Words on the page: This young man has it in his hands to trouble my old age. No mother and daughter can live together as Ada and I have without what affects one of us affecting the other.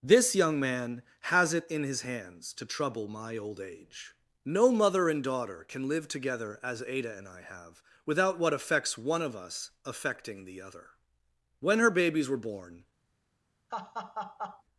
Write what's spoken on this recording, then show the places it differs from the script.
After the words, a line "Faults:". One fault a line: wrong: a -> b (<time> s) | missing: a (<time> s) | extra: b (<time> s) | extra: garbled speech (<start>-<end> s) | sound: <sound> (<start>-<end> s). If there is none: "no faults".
This young man has it in his hands to trouble my old age. No mother and daughter can live together as Ada and I have without what affects one of us affecting the other. When her babies were born
Faults:
extra: When her babies were born (11.6 s)
sound: laugh (13.7-14.6 s)